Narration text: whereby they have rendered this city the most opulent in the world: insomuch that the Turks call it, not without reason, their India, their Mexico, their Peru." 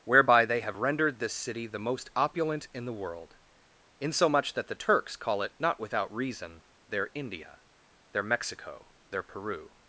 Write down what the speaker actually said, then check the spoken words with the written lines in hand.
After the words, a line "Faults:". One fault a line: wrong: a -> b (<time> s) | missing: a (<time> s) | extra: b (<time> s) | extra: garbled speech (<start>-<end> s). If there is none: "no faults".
whereby they have rendered this city the most opulent in the world: insomuch that the Turks call it, not without reason, their India, their Mexico, their Peru."
Faults:
no faults